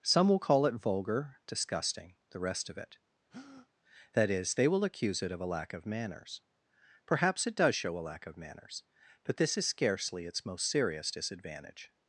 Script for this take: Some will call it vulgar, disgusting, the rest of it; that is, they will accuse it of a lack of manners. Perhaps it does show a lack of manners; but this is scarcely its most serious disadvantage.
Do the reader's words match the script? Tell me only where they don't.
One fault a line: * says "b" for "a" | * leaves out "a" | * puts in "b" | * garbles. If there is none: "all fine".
all fine